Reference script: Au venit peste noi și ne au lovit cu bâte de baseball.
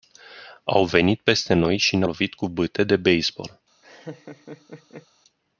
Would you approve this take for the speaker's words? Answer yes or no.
no